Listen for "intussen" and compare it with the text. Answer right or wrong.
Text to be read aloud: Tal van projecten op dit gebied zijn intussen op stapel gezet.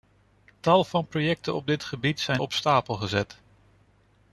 wrong